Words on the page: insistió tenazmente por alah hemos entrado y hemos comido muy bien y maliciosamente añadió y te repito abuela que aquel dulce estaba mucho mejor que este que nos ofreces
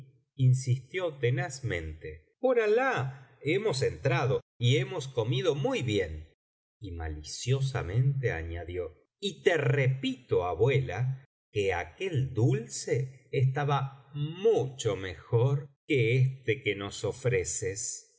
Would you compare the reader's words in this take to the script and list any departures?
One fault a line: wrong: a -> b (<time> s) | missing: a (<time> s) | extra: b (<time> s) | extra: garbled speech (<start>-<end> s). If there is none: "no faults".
no faults